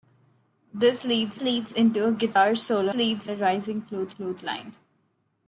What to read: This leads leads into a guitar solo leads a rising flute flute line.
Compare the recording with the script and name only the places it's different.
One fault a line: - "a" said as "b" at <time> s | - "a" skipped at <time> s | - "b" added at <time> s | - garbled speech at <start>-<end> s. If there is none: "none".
none